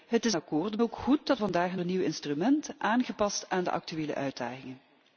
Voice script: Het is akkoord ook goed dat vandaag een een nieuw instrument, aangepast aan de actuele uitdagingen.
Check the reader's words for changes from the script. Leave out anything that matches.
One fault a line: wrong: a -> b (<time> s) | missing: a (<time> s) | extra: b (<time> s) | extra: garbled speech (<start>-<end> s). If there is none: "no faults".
no faults